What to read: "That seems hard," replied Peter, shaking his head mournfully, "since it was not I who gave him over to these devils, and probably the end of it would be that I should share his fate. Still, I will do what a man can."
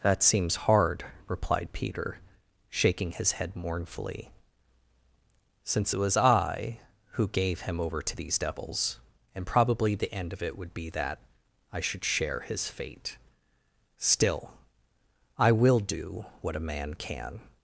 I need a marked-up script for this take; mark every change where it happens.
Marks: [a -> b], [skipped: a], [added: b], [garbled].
"That seems hard," replied Peter, shaking his head mournfully, "since it was [skipped: not] I who gave him over to these devils, and probably the end of it would be that I should share his fate. Still, I will do what a man can."